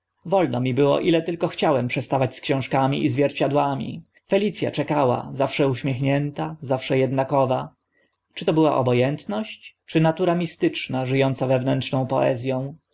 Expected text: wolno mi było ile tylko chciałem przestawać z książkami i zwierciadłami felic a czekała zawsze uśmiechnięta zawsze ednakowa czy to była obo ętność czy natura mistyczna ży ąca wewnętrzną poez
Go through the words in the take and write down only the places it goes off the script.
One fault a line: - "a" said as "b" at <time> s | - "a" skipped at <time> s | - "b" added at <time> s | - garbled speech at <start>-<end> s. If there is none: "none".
none